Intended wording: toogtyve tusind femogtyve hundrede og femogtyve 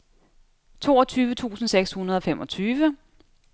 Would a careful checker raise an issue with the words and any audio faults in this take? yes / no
yes